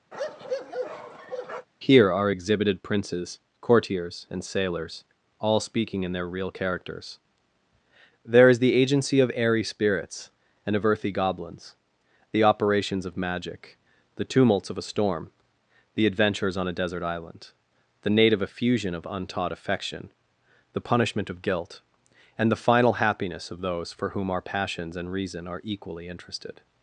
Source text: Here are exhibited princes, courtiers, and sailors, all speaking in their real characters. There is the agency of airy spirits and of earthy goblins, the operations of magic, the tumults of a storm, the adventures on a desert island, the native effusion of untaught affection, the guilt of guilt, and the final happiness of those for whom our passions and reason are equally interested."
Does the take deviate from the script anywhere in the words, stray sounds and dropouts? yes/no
yes